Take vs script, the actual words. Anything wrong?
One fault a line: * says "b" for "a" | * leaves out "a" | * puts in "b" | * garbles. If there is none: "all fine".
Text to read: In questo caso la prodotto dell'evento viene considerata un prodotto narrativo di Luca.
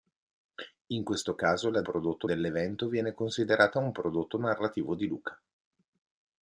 all fine